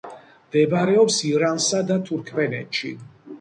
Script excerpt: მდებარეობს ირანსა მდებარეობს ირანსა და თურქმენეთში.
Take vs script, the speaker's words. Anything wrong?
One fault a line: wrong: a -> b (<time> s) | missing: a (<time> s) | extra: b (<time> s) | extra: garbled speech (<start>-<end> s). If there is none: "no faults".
missing: მდებარეობს ირანსა (1.8 s)